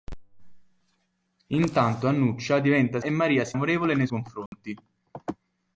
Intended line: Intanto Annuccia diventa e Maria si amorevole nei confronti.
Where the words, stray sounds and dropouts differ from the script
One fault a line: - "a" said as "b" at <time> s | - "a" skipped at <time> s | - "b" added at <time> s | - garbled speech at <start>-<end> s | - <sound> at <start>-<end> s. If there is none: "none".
- dropout at 4.5-4.5 s